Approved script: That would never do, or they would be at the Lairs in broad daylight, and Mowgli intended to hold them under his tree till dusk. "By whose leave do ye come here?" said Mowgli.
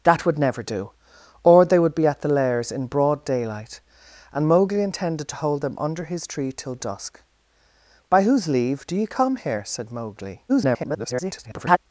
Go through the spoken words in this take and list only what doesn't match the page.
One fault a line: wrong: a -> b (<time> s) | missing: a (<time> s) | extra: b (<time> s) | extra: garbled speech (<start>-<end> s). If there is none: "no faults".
extra: garbled speech (10.5-11.8 s)